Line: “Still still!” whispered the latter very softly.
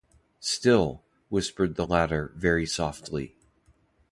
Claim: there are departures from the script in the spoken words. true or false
true